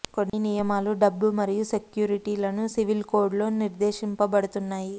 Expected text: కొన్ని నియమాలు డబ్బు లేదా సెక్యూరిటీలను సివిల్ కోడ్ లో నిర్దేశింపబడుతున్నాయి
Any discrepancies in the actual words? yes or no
yes